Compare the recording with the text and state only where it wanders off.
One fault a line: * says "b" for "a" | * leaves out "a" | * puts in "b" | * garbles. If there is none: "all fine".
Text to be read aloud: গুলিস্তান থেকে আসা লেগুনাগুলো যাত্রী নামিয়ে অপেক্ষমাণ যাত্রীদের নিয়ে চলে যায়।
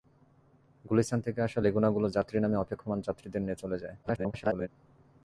* garbles